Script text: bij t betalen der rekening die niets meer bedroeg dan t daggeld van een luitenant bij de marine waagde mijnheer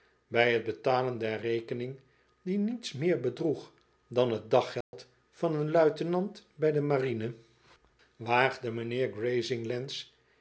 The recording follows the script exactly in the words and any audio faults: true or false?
false